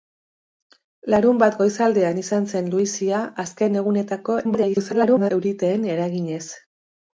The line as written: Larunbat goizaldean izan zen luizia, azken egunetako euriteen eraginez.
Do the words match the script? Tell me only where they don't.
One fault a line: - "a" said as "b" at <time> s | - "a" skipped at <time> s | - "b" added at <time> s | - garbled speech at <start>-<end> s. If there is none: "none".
- garbled speech at 4.4-5.3 s